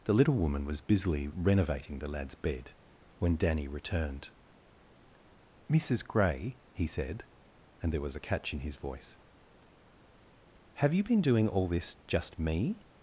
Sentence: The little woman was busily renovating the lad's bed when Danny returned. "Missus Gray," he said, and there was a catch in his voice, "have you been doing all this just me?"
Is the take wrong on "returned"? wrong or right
right